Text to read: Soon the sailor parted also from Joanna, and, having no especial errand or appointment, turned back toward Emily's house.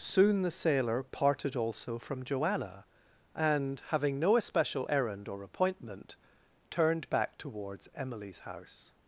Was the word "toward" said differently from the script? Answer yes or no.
yes